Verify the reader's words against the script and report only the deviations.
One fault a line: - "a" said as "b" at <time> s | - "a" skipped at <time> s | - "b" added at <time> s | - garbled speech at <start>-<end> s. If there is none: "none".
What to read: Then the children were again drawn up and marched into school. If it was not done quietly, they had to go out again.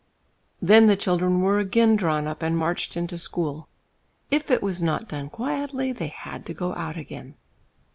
none